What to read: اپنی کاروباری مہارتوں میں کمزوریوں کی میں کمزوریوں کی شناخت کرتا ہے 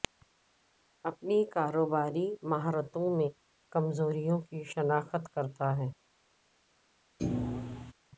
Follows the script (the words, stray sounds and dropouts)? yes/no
no